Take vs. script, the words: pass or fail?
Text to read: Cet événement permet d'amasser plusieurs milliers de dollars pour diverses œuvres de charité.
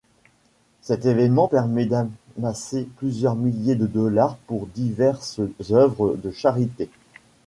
pass